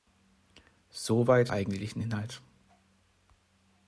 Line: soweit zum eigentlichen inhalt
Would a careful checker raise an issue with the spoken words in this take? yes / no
yes